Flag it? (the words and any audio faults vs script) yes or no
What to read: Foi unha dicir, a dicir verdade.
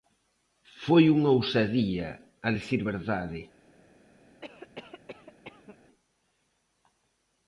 yes